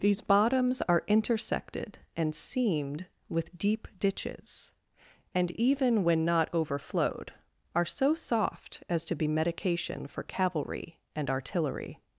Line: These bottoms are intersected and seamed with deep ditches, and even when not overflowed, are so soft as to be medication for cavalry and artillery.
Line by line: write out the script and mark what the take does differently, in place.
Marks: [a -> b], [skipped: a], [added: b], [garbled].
These bottoms are intersected and seamed with deep ditches, and even when not overflowed, are so soft as to be medication for cavalry and artillery.